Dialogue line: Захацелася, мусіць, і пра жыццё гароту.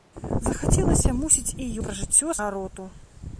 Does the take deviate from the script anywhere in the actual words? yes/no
no